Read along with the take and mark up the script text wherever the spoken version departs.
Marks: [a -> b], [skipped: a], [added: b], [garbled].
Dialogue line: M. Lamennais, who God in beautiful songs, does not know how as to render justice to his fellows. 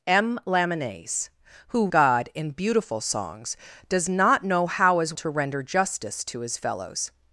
M. Lamennais, who God in beautiful songs, does not know how as to render justice to his fellows.